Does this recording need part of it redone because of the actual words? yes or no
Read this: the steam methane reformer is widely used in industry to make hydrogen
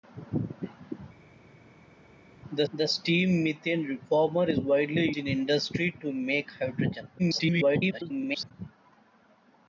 yes